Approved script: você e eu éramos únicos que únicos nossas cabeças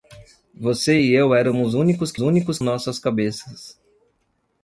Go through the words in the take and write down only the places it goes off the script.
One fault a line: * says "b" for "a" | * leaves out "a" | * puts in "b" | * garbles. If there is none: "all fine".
all fine